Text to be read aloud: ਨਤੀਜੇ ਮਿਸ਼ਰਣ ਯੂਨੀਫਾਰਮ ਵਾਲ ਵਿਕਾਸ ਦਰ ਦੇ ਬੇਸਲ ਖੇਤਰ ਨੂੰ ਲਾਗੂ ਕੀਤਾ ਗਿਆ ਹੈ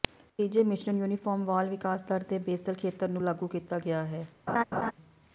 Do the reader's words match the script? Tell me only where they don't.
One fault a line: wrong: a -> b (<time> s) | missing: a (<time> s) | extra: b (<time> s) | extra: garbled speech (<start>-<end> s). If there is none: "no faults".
no faults